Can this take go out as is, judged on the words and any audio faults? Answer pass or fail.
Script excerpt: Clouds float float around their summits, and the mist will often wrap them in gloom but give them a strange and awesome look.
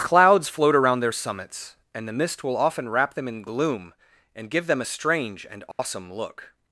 fail